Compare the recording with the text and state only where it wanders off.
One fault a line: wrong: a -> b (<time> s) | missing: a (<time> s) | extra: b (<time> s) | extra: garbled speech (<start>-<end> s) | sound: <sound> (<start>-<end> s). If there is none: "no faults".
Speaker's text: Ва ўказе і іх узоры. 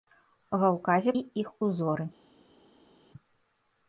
no faults